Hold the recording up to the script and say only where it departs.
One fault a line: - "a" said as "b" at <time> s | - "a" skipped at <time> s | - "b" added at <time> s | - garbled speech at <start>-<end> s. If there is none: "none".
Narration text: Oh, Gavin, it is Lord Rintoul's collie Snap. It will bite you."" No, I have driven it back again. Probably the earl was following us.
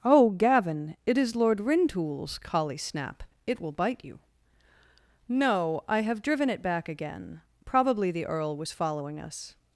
none